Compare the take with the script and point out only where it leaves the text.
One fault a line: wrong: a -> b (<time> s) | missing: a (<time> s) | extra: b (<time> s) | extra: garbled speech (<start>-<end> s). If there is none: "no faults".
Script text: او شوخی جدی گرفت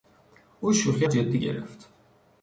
no faults